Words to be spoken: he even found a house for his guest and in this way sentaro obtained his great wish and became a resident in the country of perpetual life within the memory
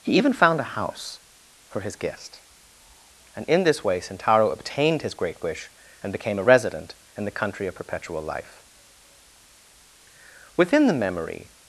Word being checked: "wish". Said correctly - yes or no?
yes